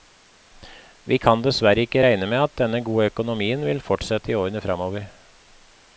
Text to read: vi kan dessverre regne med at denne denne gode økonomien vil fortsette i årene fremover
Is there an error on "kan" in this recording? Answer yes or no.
no